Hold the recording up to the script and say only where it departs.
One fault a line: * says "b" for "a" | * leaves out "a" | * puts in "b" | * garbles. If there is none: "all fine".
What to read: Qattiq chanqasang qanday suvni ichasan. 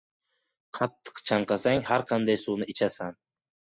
* puts in "har"